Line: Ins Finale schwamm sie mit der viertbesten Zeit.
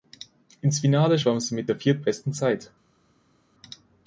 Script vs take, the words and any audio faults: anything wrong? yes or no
no